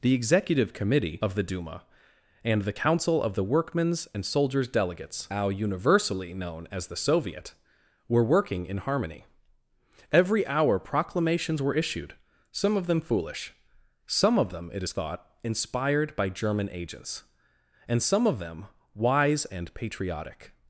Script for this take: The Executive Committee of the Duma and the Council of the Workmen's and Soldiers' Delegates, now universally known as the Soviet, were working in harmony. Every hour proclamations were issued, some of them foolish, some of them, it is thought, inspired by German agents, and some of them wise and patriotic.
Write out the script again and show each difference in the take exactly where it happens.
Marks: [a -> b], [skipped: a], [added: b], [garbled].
The Executive Committee of the Duma and the Council of the Workmen's and Soldiers' Delegates, now universally known as the Soviet, were working in harmony. Every hour proclamations were issued, some of them foolish, some of them, it is thought, inspired by German agents, and some of them wise and patriotic.